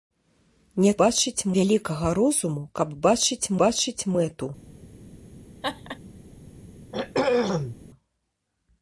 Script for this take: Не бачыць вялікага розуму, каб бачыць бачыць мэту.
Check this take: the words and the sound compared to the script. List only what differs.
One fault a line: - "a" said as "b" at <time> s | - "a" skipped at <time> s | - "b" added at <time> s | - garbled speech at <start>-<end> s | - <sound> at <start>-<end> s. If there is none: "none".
- laugh at 5.6-6.0 s
- throat clearing at 6.9-7.8 s